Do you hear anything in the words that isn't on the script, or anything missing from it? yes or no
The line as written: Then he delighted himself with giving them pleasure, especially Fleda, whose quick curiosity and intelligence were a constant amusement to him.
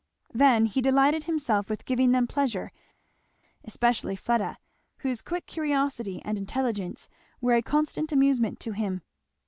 no